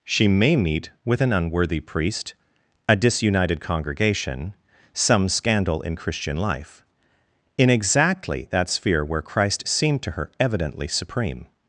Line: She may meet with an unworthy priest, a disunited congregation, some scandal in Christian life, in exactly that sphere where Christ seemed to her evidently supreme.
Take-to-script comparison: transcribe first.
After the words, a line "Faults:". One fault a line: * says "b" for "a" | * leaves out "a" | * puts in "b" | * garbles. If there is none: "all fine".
She may meet with an unworthy priest, a disunited congregation, some scandal in Christian life, in exactly that sphere where Christ seemed to her evidently supreme.
Faults:
all fine